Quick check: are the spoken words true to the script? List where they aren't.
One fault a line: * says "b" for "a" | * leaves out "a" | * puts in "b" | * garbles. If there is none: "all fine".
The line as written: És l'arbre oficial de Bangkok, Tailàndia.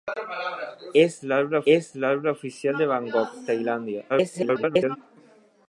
* puts in "és l'arbre"
* garbles